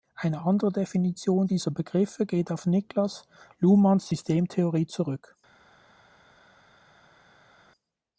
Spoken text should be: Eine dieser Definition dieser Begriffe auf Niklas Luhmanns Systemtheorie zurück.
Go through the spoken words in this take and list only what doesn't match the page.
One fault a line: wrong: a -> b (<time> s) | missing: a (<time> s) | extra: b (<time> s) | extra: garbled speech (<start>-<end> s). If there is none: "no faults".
wrong: dieser -> andere (0.5 s)
extra: geht (2.2 s)